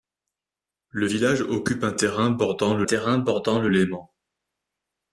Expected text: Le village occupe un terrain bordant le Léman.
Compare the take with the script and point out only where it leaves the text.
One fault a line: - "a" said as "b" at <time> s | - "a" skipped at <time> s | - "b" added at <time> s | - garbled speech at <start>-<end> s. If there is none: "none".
- "terrain bordant le" added at 2.8 s